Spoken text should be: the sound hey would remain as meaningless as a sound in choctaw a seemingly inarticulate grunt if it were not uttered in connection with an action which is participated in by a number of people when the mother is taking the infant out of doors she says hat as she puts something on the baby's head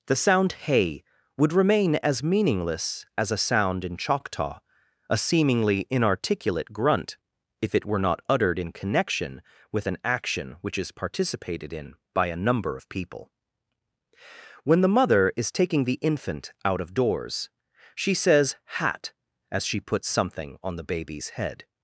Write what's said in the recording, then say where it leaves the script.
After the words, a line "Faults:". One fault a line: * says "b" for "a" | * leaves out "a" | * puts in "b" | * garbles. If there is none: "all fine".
the sound hey would remain as meaningless as a sound in choctaw a seemingly inarticulate grunt if it were not uttered in connection with an action which is participated in by a number of people when the mother is taking the infant out of doors she says hat as she puts something on the baby's head
Faults:
all fine